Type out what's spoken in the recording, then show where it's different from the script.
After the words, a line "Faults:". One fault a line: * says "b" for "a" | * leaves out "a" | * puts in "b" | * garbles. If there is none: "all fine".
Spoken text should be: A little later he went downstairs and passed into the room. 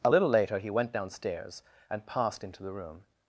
A little later he went downstairs and passed into the room.
Faults:
all fine